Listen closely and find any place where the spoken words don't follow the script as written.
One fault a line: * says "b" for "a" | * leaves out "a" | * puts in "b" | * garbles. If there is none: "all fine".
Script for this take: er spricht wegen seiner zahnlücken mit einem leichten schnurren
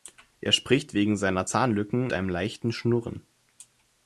* leaves out "mit"